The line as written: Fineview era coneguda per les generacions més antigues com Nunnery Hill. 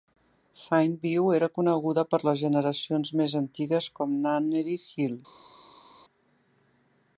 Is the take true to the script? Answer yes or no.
yes